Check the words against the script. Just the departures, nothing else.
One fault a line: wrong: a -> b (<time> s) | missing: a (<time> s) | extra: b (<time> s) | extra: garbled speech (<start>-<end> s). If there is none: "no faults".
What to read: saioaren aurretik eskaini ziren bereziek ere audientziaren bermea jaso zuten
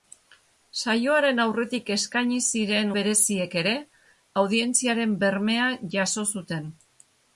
no faults